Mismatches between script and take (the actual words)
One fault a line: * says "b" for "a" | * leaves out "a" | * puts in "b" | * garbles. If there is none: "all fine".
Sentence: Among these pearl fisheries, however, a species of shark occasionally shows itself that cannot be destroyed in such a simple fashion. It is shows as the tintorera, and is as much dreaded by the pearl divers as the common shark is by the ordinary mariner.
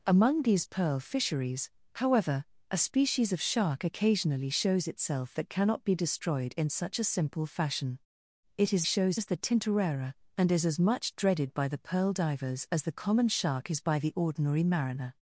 all fine